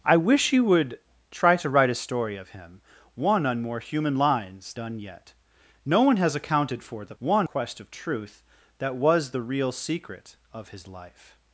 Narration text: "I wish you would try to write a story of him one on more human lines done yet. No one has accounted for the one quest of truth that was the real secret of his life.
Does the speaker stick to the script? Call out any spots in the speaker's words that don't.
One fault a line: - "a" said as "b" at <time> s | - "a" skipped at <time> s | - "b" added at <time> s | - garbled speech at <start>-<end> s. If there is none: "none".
none